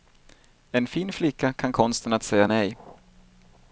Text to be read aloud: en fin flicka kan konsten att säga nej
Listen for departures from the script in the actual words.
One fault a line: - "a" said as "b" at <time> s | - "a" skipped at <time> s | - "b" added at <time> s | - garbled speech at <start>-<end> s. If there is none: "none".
none